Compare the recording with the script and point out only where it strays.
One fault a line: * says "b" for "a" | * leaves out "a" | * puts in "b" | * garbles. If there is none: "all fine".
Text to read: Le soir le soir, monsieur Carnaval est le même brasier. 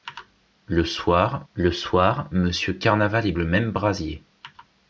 all fine